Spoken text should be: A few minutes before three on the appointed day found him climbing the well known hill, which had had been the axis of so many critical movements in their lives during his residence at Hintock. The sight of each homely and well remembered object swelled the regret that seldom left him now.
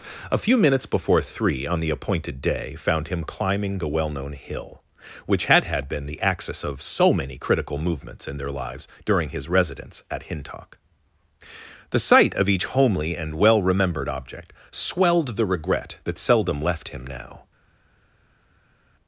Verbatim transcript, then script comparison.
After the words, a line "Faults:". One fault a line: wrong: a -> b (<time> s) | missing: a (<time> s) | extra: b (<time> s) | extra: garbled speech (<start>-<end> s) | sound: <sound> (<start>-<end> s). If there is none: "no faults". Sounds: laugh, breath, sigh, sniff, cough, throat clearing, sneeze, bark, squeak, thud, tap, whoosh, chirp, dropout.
A few minutes before three on the appointed day found him climbing the well known hill, which had had been the axis of so many critical movements in their lives during his residence at Hintock. The sight of each homely and well remembered object swelled the regret that seldom left him now.
Faults:
no faults